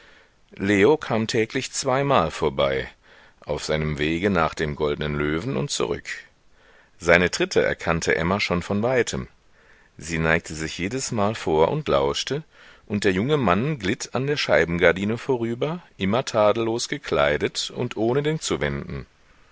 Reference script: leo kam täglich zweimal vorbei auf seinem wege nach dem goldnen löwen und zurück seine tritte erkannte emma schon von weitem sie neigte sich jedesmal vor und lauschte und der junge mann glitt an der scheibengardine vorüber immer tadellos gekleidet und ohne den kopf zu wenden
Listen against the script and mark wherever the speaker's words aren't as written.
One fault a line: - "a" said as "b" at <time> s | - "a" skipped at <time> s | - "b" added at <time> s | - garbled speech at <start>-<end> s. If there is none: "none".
- "kopf" skipped at 18.4 s